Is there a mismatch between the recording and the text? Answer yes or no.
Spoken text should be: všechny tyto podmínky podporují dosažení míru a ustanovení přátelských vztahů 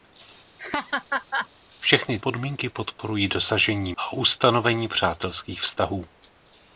yes